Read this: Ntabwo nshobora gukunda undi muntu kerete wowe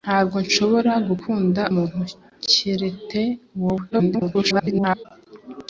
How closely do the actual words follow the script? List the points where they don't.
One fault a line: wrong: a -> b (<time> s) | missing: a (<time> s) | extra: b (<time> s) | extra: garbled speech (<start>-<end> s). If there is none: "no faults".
missing: undi (1.6 s)
extra: garbled speech (3.9-5.1 s)